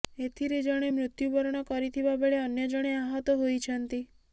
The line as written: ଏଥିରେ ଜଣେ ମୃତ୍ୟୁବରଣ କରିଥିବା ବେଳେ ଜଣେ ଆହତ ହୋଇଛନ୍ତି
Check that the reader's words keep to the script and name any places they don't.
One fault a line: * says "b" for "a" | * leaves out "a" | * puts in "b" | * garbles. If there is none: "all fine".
* puts in "ଅନ୍ୟ"